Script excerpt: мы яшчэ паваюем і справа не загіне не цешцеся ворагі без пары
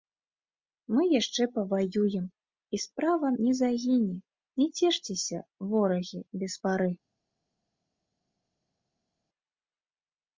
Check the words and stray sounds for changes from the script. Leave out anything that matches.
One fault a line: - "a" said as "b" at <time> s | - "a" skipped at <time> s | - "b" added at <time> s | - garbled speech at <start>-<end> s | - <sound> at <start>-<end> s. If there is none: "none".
none